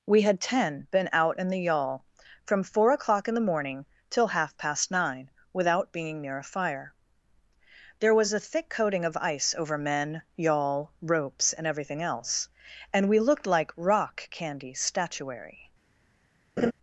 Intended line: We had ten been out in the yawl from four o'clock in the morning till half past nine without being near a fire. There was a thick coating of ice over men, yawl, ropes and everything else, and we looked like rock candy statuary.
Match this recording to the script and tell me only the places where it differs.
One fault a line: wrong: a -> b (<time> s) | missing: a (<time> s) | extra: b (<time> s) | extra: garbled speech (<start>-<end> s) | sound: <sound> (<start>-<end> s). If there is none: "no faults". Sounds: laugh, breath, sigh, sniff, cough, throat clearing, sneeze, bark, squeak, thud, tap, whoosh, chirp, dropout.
sound: laugh (16.6-16.7 s)